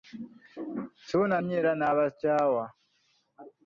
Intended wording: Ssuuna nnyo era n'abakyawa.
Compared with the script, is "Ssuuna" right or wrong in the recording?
right